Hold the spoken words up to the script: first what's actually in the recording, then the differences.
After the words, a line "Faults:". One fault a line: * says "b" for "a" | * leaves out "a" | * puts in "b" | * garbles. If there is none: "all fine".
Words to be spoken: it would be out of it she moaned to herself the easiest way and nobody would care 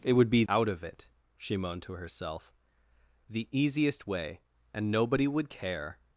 it would be out of it she moaned to herself the easiest way and nobody would care
Faults:
all fine